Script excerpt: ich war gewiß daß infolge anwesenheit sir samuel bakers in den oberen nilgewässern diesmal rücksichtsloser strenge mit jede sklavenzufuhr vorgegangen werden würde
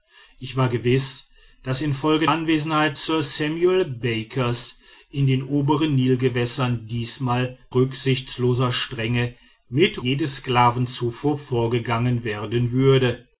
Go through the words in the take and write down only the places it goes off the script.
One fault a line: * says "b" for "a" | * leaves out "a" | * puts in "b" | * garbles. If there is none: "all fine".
all fine